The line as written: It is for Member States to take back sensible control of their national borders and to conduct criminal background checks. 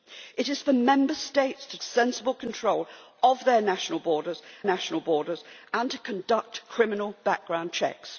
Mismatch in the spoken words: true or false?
true